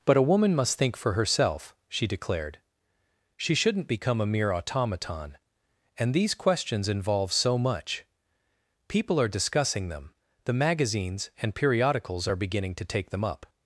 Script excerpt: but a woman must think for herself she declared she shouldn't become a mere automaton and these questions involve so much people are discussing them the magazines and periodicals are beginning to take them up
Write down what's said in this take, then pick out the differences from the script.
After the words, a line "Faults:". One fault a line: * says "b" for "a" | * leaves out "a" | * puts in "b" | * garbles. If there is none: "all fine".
but a woman must think for herself she declared she shouldn't become a mere automaton and these questions involve so much people are discussing them the magazines and periodicals are beginning to take them up
Faults:
all fine